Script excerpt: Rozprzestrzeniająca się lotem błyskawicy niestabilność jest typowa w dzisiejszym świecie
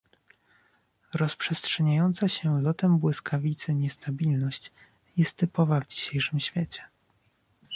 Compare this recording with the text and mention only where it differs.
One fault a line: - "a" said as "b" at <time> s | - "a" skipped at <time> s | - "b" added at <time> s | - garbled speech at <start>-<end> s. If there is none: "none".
none